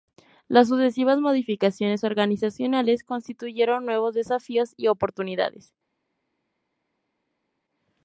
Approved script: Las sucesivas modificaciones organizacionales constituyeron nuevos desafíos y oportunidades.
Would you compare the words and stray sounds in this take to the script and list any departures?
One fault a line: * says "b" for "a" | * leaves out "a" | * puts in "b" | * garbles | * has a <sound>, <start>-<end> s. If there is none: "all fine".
all fine